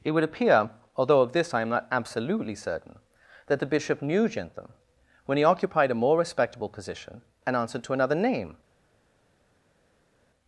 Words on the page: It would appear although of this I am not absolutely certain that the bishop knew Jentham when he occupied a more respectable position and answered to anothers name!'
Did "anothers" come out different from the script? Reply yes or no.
yes